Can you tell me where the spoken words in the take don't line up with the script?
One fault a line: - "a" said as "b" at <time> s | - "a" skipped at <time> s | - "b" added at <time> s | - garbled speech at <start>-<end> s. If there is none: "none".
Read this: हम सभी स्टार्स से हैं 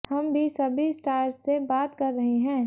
- "भी" added at 0.3 s
- "बात कर रहे" added at 1.7 s